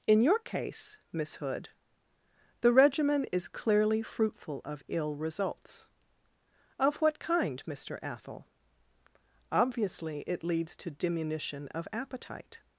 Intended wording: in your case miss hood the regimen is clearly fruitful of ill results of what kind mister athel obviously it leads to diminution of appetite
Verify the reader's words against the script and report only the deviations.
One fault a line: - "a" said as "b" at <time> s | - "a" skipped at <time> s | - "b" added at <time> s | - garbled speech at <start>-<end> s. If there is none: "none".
none